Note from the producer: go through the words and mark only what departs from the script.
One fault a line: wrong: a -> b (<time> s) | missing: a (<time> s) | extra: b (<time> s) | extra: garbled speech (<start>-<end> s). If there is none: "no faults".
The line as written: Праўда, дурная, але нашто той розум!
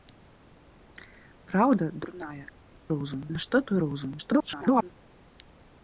wrong: але -> розум (3.0 s)
extra: garbled speech (4.2-4.9 s)